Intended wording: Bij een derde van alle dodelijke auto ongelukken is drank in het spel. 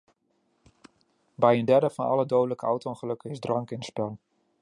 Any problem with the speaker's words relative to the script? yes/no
no